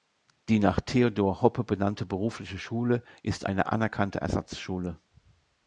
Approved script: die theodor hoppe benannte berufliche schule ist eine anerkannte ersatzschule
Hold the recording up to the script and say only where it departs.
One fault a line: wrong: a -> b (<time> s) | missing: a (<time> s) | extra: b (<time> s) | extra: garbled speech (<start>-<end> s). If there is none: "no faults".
extra: nach (0.6 s)